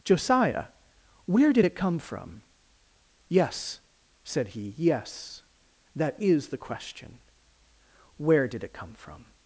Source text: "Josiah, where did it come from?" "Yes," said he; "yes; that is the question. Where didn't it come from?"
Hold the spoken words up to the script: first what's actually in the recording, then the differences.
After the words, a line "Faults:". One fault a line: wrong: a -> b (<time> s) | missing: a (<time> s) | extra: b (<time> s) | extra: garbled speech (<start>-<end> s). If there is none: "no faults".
"Josiah, where did it come from?" "Yes," said he; "yes; that is the question. Where did it come from?"
Faults:
wrong: didn't -> did (8.5 s)